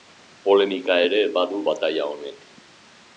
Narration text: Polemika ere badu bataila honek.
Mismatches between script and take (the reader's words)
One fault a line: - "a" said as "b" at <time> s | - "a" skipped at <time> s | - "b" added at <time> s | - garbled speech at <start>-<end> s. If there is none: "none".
none